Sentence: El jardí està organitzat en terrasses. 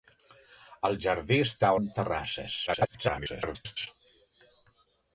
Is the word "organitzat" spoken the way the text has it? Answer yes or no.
no